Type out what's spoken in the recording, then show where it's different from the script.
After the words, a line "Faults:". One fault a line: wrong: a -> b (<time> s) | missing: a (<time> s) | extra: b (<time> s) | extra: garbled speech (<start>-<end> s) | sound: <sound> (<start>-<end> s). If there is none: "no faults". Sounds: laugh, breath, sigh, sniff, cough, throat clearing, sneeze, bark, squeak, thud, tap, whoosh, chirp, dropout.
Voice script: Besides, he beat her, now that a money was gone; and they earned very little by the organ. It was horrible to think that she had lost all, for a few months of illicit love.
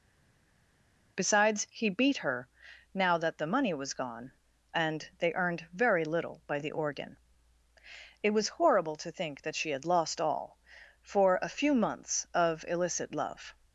Besides, he beat her, now that the money was gone; and they earned very little by the organ. It was horrible to think that she had lost all, for a few months of illicit love.
Faults:
wrong: a -> the (3.4 s)